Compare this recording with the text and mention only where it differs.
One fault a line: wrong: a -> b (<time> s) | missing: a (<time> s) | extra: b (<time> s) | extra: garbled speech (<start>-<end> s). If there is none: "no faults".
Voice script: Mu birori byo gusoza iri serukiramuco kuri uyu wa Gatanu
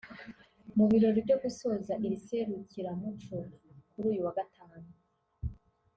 no faults